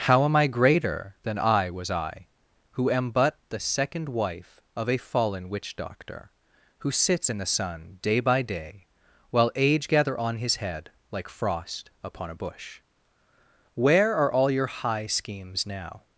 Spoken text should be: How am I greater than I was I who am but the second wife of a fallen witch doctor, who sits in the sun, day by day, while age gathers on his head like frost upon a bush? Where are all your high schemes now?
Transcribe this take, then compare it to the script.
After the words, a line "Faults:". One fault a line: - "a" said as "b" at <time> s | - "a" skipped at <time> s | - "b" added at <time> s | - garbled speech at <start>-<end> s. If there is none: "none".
How am I greater than I was I who am but the second wife of a fallen witch doctor, who sits in the sun, day by day, while age gather on his head like frost upon a bush? Where are all your high schemes now?
Faults:
- "gathers" said as "gather" at 9.9 s